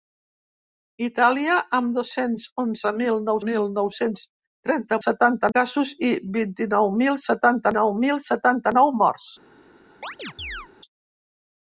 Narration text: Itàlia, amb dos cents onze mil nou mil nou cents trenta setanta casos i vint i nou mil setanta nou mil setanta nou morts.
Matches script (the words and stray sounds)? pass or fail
fail